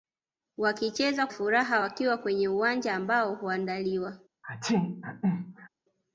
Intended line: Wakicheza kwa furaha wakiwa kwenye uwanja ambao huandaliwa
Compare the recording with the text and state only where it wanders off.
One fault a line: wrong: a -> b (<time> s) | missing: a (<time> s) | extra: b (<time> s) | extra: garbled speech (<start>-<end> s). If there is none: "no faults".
missing: kwa (1.3 s)